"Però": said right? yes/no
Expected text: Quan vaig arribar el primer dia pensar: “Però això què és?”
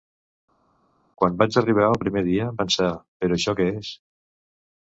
yes